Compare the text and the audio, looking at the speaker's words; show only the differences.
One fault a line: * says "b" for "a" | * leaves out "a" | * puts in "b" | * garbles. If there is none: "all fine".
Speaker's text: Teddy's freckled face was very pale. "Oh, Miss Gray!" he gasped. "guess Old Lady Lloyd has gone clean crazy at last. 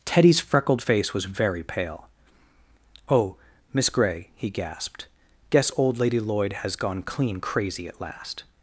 all fine